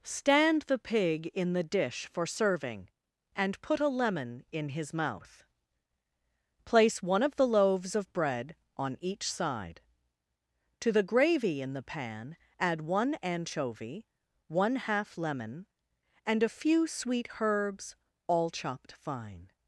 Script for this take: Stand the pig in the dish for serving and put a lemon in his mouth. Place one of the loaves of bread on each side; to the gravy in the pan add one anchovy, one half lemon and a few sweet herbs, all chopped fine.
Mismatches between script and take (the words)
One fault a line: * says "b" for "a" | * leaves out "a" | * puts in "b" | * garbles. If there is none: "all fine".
all fine